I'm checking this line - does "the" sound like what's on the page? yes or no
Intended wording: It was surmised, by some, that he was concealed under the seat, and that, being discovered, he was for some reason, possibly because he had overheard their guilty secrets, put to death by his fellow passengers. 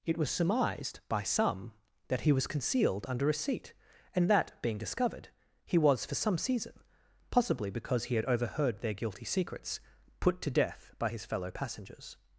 no